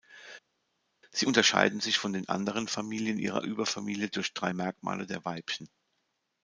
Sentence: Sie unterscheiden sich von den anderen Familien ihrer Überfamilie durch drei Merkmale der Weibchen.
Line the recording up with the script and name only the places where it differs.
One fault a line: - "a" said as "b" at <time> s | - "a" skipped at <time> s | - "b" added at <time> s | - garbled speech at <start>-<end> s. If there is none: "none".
none